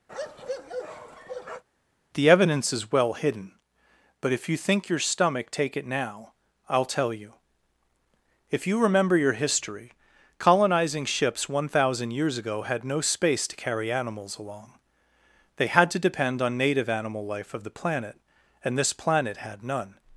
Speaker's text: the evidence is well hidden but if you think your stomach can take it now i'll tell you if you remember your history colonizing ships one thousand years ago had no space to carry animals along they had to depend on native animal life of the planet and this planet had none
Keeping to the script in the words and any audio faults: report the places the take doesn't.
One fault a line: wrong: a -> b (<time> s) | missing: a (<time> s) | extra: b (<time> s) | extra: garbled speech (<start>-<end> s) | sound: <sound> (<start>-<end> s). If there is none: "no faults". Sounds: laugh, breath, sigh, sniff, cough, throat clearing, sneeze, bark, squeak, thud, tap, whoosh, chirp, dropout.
sound: bark (0.1-1.6 s)
missing: can (5.5 s)